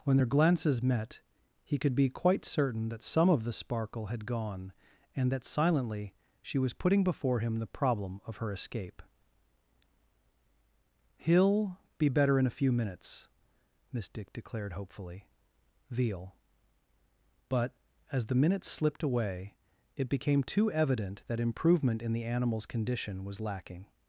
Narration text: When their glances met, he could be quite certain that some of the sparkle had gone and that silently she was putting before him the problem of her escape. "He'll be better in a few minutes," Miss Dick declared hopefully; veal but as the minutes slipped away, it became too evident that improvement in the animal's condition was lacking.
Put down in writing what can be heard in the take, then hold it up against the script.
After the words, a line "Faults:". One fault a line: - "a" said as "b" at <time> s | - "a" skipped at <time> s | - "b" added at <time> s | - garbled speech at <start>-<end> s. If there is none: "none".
When their glances met, he could be quite certain that some of the sparkle had gone and that silently she was putting before him the problem of her escape. "He'll be better in a few minutes," Miss Dick declared hopefully; veal but as the minutes slipped away, it became too evident that improvement in the animal's condition was lacking.
Faults:
none